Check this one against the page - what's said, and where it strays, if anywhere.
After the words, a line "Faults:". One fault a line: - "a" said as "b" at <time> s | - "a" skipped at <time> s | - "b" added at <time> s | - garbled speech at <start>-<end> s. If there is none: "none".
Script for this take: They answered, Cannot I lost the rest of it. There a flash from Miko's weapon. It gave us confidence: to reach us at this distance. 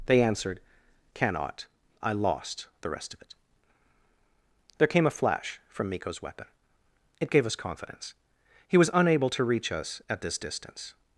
They answered, Cannot I lost the rest of it. There came a flash from Miko's weapon. It gave us confidence: he was unable to reach us at this distance.
Faults:
- "came" added at 4.9 s
- "he was unable" added at 8.6 s